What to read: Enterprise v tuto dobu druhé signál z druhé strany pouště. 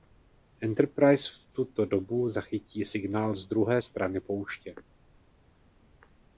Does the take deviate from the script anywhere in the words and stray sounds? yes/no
yes